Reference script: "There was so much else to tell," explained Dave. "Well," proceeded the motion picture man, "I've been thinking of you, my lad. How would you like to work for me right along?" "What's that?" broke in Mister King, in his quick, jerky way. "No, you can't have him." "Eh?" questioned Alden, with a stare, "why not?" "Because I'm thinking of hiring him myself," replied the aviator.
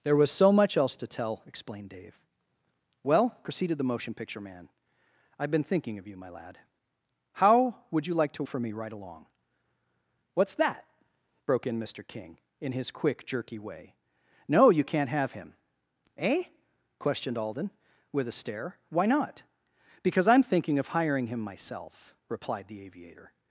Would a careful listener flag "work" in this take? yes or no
yes